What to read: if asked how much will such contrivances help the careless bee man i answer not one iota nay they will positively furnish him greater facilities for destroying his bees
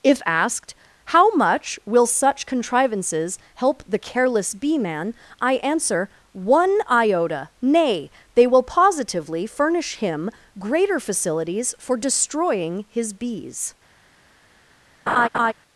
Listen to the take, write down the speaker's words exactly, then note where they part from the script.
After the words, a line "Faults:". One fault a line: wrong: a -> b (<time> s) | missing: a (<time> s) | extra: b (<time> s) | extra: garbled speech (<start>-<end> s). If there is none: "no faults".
if asked how much will such contrivances help the careless bee man i answer one iota nay they will positively furnish him greater facilities for destroying his bees
Faults:
missing: not (6.1 s)